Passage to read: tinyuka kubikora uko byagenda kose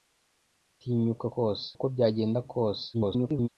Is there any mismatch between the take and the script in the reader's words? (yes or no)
yes